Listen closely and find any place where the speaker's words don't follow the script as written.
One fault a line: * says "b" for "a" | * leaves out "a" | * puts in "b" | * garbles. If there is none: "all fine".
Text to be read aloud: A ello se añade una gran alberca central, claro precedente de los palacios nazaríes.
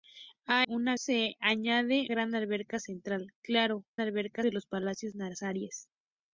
* says "una" for "ello"
* leaves out "una"
* says "alberca" for "precedente"